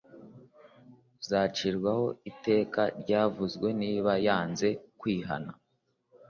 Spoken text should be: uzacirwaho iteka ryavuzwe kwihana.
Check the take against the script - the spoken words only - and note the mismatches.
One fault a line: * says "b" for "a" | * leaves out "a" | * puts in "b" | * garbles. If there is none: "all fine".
* puts in "niba yanze"